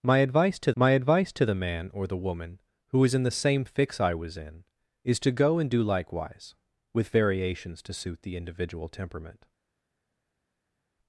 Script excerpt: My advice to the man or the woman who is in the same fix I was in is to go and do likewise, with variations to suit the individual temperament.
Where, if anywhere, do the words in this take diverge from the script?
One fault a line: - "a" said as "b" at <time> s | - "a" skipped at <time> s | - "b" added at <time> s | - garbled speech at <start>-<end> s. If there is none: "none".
- "my advice to" added at 0.8 s